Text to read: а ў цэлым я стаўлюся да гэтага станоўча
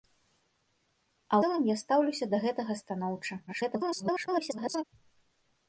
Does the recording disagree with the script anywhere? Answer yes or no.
yes